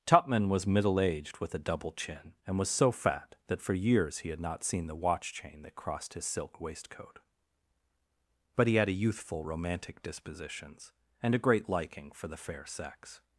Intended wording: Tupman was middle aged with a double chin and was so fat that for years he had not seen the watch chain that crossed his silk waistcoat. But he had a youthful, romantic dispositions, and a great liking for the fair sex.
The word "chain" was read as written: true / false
true